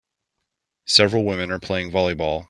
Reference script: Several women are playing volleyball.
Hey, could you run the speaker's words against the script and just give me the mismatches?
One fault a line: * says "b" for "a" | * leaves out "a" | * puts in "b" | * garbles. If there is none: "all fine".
all fine